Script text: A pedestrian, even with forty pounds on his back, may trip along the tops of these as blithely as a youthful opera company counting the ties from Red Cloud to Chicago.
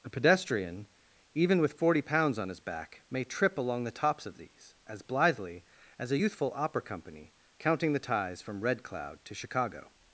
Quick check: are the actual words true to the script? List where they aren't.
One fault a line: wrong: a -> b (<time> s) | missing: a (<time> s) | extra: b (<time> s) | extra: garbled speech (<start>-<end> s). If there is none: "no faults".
no faults